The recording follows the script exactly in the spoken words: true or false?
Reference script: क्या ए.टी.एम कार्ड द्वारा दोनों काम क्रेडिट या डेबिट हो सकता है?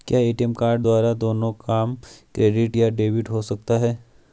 true